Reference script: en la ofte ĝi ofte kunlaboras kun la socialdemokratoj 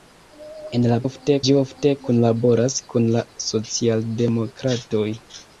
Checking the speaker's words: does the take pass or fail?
pass